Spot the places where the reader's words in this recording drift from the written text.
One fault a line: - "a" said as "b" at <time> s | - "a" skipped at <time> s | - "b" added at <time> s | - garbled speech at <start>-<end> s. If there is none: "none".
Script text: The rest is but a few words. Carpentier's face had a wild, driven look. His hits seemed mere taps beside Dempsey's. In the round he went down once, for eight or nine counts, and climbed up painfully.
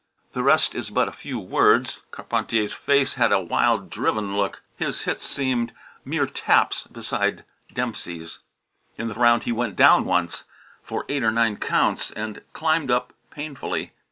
none